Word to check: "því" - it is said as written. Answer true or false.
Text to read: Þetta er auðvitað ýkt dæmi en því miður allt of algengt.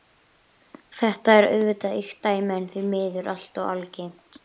true